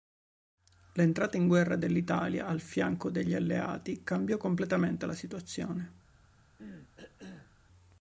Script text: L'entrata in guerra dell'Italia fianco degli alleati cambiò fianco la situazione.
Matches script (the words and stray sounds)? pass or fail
fail